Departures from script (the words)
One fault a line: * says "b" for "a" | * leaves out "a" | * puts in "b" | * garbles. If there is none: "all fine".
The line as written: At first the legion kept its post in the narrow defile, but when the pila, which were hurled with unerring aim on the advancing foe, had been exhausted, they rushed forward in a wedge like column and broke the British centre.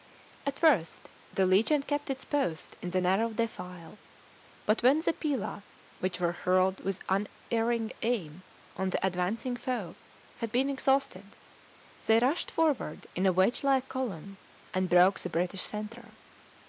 all fine